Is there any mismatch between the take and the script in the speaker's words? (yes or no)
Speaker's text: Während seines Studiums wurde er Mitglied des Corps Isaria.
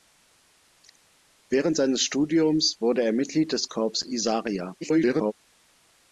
yes